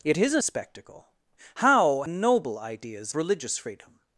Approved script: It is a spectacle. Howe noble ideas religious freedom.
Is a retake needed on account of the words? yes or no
no